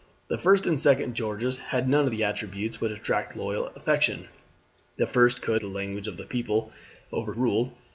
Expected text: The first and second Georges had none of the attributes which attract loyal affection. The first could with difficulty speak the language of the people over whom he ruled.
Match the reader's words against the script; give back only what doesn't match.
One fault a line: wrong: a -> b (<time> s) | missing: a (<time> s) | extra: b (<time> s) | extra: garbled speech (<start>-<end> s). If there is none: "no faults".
missing: with difficulty speak (5.6 s)
missing: whom he (7.3 s)